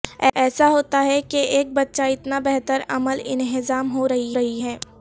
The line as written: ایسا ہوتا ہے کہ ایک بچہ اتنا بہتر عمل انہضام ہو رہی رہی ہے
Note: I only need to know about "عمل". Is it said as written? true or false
true